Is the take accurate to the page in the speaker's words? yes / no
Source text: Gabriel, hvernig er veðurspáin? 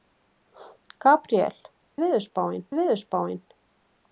no